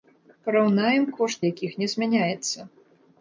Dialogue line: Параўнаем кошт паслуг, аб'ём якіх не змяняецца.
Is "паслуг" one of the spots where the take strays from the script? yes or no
yes